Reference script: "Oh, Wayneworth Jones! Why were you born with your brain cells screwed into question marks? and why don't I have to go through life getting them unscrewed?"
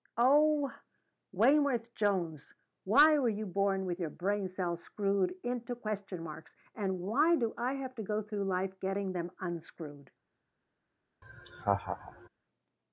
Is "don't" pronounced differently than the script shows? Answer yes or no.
yes